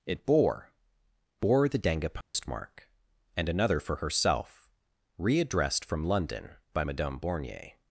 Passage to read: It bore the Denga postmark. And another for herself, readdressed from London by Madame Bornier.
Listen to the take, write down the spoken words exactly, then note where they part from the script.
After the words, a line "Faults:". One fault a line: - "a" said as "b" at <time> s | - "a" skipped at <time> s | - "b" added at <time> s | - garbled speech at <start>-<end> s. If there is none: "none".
It bore bore the Denga postmark. And another for herself, readdressed from London by Madame Bornier.
Faults:
- "bore" added at 1.4 s